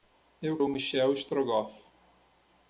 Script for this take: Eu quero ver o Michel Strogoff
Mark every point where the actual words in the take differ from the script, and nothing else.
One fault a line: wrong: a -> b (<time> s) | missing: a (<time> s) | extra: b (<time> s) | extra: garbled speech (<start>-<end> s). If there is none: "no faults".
missing: quero ver (0.6 s)